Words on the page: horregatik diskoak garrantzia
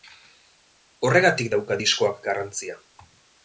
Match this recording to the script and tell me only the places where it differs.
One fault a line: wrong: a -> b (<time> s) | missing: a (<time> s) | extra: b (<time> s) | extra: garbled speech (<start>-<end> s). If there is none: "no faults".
extra: dauka (1.6 s)